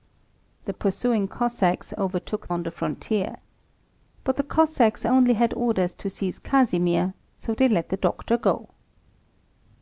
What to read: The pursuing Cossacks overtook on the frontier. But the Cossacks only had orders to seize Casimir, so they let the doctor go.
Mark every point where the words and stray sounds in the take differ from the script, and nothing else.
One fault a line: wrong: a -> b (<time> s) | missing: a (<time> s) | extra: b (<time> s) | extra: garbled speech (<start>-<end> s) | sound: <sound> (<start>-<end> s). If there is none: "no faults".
no faults